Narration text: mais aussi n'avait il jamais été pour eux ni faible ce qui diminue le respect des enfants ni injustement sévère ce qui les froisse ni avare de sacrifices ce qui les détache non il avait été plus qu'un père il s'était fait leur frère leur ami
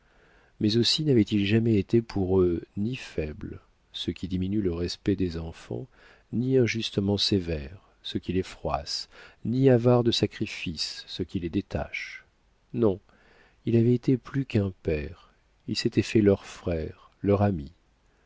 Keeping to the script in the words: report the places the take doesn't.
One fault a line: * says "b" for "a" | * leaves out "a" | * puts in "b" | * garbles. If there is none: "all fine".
all fine